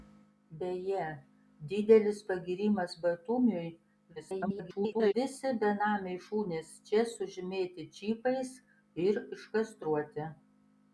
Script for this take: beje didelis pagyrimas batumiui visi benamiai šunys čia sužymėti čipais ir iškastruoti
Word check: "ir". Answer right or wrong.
right